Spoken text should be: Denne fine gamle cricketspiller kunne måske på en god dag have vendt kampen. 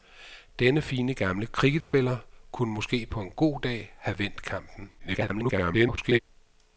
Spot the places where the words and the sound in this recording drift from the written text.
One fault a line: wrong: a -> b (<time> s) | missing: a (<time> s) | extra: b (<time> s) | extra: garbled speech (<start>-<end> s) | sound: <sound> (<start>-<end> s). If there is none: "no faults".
sound: dropout (1.8-1.9 s)
extra: garbled speech (5.0-6.2 s)